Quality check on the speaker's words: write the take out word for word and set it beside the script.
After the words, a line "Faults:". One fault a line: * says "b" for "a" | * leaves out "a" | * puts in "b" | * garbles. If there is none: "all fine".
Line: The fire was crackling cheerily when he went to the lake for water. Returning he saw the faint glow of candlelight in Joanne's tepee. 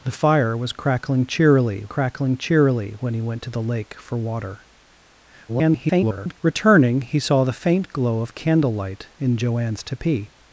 The fire was crackling cheerily crackling cheerily when he went to the lake for water. [garbled] Returning he saw the faint glow of candlelight in Joanne's tepee.
Faults:
* puts in "crackling cheerily"
* garbles